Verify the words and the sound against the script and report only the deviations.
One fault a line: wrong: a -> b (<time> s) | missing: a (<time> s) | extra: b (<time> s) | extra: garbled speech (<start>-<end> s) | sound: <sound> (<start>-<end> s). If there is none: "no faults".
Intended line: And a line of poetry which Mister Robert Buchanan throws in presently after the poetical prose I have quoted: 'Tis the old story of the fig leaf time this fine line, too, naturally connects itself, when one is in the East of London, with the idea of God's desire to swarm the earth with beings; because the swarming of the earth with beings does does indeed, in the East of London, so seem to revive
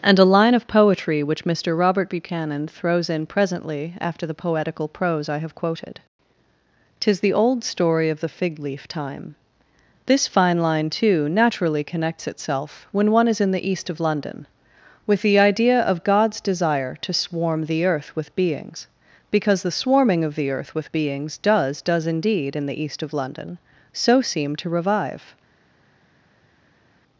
no faults